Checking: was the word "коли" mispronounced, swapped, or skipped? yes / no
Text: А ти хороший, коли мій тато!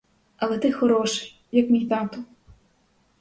yes